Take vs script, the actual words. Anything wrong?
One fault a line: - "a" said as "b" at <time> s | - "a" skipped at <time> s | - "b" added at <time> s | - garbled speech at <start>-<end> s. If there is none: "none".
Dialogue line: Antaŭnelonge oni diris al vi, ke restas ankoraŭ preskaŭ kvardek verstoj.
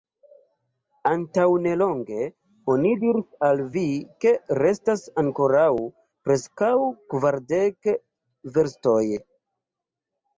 none